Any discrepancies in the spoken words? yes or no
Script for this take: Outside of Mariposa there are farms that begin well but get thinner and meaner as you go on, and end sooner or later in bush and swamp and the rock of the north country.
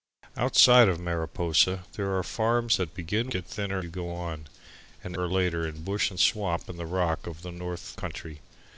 yes